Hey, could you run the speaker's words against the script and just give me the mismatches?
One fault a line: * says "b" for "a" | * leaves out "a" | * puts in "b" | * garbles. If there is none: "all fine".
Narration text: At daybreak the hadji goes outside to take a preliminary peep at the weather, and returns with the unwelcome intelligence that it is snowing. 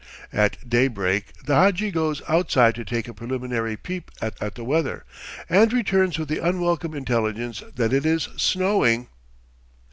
* puts in "at"